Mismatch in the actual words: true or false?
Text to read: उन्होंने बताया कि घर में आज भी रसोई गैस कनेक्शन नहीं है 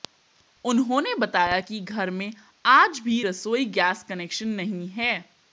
false